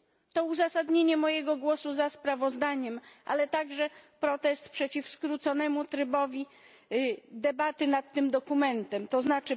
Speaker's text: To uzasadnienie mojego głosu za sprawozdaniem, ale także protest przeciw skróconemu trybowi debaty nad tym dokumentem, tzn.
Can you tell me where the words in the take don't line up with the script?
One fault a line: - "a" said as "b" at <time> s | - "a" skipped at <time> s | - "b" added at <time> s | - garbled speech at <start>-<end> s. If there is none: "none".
none